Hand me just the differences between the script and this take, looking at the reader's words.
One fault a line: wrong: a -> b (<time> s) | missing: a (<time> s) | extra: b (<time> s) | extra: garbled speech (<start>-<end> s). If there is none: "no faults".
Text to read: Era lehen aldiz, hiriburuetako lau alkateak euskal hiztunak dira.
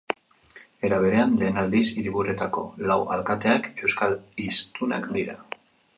extra: berean (1.0 s)